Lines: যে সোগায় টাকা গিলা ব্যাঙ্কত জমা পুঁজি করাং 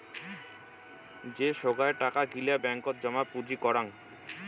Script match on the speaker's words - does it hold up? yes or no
yes